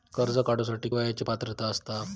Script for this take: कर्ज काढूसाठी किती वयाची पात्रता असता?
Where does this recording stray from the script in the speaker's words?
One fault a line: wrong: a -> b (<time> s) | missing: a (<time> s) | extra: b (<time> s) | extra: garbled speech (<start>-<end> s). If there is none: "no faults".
missing: किती (0.9 s)